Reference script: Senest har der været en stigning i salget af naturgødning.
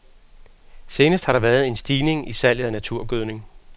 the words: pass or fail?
pass